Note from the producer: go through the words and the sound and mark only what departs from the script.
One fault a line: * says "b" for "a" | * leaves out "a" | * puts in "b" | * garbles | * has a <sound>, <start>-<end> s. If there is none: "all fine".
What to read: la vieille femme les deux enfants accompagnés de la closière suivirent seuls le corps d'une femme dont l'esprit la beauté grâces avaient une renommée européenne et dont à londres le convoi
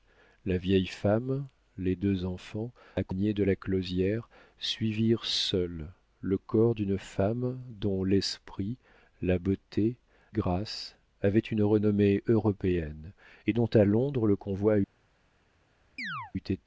* has a chirp, 16.0-16.3 s